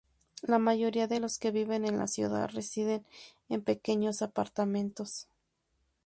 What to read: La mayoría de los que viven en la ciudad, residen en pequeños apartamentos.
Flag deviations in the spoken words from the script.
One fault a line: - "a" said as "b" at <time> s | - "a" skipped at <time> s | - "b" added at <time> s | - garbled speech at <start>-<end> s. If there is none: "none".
none